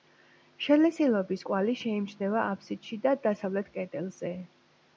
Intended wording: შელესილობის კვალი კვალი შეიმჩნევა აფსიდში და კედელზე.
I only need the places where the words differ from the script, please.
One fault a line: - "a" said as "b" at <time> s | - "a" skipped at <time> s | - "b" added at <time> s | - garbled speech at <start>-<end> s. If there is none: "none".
- "კვალი" skipped at 1.8 s
- "დასავლეთ" added at 3.3 s